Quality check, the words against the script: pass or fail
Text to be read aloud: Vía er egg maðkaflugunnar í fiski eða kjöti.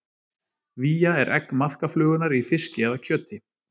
pass